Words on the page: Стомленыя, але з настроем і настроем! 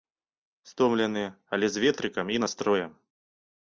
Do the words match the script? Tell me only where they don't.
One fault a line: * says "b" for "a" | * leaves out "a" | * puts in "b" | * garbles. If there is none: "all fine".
* says "ветрыкам" for "настроем"